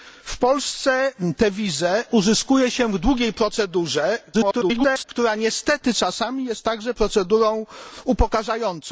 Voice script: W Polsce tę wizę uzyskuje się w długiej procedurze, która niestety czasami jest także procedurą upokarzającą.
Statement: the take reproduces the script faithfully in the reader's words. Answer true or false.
false